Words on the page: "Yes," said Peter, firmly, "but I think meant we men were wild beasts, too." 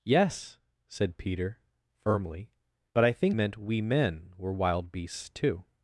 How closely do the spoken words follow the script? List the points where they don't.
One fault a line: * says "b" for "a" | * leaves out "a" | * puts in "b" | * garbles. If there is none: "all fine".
all fine